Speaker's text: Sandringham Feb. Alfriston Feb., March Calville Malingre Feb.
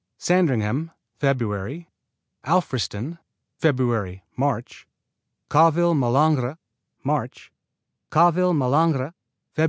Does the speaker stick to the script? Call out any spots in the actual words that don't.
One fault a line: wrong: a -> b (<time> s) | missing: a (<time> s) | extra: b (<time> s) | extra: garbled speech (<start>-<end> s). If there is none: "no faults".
extra: March Calville Malingre (7.0 s)